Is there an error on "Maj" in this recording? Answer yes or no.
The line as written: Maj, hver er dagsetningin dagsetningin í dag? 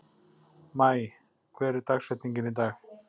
no